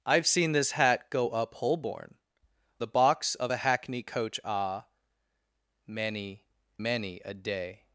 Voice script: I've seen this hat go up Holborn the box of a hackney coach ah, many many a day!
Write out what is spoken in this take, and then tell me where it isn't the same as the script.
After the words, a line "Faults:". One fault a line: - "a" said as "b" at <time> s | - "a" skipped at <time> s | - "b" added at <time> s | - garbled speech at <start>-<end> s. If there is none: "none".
I've seen this hat go up Holborn the box of a hackney coach ah, many many a day!
Faults:
none